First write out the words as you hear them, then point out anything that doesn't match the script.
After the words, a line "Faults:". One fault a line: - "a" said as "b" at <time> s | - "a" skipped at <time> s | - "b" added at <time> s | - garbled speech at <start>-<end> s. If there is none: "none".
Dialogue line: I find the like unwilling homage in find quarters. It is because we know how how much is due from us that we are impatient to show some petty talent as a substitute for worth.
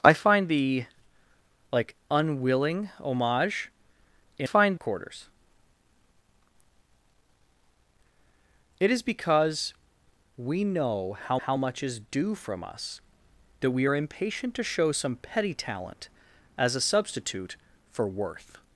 I find the like unwilling homage in find quarters. It is because we know how how much is due from us that we are impatient to show some petty talent as a substitute for worth.
Faults:
none